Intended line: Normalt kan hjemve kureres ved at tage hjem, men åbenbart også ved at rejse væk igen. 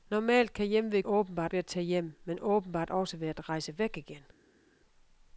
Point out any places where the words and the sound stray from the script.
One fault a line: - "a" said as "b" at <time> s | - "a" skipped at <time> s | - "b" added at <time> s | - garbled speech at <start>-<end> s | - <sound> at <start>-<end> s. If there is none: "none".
- "kureres" said as "åbenbart" at 1.0 s